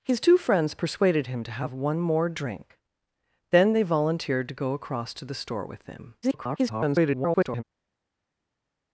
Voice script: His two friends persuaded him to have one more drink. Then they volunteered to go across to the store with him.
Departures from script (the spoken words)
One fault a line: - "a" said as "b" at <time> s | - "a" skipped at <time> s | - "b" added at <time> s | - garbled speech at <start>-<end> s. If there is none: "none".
- garbled speech at 6.2-7.6 s